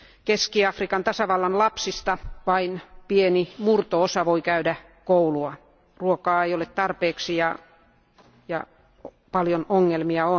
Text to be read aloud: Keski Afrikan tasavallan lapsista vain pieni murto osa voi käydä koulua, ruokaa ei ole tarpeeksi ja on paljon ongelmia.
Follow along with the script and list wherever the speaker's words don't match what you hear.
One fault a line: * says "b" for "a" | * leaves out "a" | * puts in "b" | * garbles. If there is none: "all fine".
all fine